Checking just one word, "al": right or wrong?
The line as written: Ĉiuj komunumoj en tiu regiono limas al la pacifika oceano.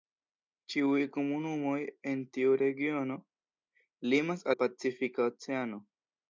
wrong